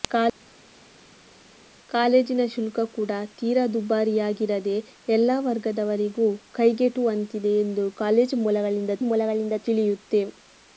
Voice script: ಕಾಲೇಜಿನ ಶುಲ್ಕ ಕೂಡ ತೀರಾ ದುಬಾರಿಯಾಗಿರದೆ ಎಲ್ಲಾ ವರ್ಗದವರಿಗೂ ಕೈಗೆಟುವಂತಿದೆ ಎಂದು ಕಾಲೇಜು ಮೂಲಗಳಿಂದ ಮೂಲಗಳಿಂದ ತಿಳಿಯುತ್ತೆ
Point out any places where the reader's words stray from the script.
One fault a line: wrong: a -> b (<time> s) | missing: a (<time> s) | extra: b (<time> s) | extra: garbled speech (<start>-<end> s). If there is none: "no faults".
no faults